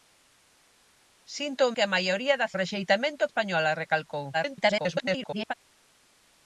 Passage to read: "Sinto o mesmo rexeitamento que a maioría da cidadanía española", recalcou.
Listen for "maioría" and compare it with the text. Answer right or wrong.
right